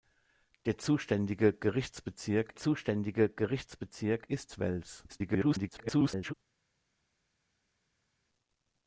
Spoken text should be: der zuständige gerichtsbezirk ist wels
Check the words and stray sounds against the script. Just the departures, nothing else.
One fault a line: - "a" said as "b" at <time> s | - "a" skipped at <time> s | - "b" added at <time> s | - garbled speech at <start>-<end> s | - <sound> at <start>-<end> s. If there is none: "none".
- "zuständige gerichtsbezirk" added at 2.6 s
- garbled speech at 5.1-6.3 s